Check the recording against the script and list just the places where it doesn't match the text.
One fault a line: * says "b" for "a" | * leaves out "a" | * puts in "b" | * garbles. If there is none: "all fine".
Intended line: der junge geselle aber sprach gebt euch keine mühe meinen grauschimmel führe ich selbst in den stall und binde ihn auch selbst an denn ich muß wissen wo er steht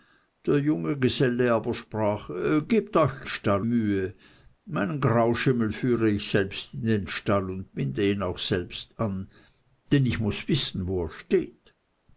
* says "stall" for "keine"